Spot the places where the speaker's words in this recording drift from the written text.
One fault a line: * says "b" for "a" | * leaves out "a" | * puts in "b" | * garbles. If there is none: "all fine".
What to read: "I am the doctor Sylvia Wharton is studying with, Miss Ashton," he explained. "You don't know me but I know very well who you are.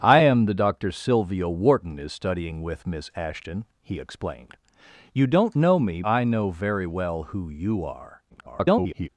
* leaves out "but"
* garbles